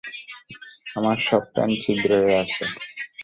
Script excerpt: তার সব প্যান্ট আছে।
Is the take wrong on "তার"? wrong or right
wrong